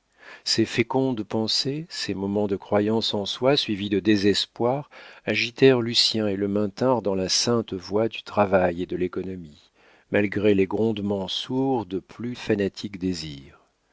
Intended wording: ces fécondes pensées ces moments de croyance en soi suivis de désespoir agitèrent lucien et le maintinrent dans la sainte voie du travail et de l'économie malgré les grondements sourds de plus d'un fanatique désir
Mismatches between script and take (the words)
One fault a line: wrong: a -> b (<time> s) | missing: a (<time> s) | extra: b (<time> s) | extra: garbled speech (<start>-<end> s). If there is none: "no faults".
missing: d'un (12.3 s)